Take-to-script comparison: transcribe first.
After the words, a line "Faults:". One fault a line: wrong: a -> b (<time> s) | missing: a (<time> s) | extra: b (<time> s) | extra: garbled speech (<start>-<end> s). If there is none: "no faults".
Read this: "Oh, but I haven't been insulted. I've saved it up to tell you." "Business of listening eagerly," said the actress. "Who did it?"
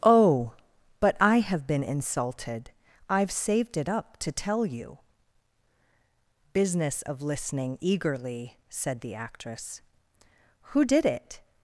"Oh, but I have been insulted. I've saved it up to tell you." "Business of listening eagerly," said the actress. "Who did it?"
Faults:
wrong: haven't -> have (1.4 s)